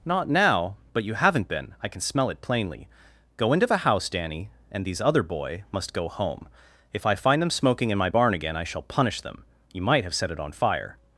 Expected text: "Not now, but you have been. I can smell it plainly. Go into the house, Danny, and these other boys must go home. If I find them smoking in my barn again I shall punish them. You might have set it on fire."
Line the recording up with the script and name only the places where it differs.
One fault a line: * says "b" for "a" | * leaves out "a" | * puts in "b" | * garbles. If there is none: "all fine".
* says "haven't" for "have"
* says "boy" for "boys"